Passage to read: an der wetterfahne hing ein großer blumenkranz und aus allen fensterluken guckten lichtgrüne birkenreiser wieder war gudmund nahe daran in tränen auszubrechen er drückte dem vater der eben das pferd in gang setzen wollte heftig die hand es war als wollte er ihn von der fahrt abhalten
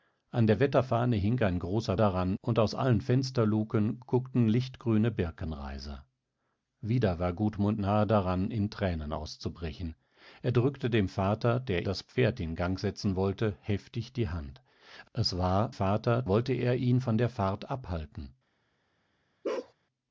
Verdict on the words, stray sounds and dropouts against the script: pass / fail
fail